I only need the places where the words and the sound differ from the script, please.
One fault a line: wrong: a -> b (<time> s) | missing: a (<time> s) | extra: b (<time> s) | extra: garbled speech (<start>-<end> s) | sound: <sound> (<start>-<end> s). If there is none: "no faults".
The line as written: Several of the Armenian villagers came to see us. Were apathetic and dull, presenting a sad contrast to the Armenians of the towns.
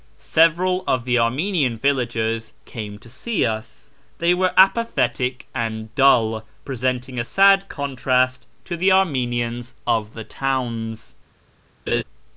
extra: They (4.2 s)
sound: laugh (11.9-12.0 s)